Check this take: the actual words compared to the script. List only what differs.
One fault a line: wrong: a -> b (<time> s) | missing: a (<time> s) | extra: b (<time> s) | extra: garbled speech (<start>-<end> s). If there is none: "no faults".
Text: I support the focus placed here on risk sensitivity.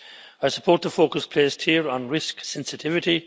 no faults